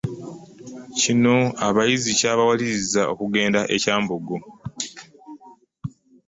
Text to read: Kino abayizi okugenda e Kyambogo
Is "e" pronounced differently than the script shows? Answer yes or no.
no